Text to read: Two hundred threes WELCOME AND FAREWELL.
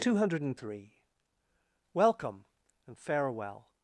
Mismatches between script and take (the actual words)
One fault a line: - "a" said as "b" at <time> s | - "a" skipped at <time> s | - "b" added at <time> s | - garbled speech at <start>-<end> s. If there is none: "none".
- "threes" said as "three" at 0.6 s